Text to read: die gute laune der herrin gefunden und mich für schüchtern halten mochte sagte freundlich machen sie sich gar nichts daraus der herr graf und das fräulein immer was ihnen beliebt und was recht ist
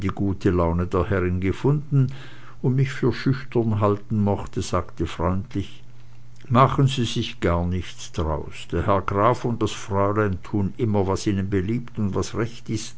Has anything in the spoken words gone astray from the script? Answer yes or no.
yes